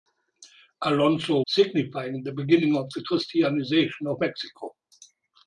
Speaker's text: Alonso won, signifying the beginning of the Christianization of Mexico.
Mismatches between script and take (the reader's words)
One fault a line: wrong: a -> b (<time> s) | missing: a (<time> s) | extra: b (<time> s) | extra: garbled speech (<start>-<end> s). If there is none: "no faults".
missing: won (1.4 s)